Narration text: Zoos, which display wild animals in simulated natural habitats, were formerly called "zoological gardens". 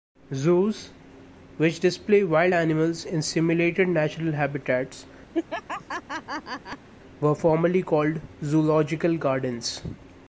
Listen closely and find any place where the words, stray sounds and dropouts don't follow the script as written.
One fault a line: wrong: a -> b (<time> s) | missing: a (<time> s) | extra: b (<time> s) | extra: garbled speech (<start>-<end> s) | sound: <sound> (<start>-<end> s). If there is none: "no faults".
sound: laugh (5.3-6.9 s)